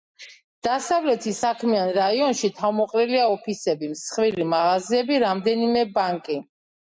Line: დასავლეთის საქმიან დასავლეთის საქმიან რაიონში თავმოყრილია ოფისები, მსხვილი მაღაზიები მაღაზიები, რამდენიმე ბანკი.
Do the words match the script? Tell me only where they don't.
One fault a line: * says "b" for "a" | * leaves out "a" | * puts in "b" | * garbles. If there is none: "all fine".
* leaves out "დასავლეთის საქმიან"
* leaves out "მაღაზიები"